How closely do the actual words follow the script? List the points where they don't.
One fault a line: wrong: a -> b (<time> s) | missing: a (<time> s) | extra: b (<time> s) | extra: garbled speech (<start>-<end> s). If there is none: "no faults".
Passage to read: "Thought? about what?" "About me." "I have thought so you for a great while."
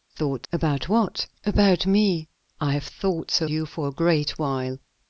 no faults